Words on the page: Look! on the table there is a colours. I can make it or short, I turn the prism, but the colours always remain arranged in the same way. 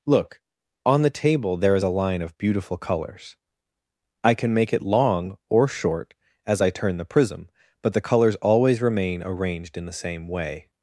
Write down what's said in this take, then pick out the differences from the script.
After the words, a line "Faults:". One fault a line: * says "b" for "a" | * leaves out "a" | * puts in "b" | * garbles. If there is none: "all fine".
Look! on the table there is a line of beautiful colours. I can make it long or short, as I turn the prism, but the colours always remain arranged in the same way.
Faults:
* puts in "line of beautiful"
* puts in "long"
* puts in "as"